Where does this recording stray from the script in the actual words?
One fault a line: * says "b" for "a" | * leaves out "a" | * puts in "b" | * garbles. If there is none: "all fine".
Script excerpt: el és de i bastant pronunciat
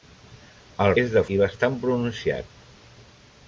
all fine